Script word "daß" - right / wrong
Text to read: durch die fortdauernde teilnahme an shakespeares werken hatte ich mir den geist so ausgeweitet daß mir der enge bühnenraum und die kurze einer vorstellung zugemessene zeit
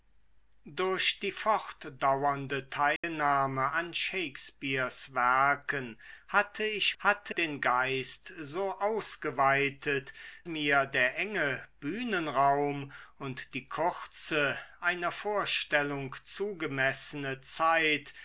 wrong